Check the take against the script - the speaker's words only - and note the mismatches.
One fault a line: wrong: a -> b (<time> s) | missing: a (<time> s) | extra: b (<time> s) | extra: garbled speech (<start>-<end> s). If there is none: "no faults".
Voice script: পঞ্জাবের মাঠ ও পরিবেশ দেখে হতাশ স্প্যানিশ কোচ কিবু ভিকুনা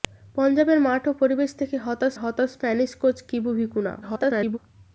extra: হতাশ (2.1 s)
extra: garbled speech (4.0-4.6 s)